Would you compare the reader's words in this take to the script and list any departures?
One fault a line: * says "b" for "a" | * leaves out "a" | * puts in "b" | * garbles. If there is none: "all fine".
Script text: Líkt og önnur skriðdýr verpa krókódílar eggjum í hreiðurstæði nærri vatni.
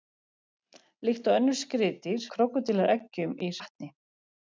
* leaves out "verpa"
* leaves out "hreiðurstæði nærri"